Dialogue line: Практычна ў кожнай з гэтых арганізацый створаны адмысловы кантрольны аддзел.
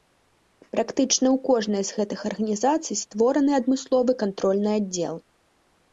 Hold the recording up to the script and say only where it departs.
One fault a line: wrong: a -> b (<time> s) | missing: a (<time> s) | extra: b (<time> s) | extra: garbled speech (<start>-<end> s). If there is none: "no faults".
no faults